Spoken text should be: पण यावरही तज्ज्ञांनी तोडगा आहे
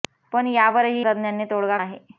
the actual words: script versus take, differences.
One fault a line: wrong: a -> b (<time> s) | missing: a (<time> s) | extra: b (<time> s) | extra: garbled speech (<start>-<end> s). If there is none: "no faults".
no faults